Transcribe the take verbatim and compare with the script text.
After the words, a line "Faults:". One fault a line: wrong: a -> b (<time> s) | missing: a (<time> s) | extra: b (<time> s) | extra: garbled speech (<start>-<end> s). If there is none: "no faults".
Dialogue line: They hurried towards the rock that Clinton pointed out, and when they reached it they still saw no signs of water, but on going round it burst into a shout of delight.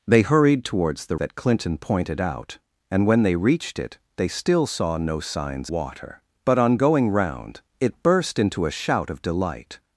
They hurried towards the that Clinton pointed out, and when they reached it they still saw no signs water, but on going round it burst into a shout of delight.
Faults:
missing: rock (1.2 s)
missing: of (5.7 s)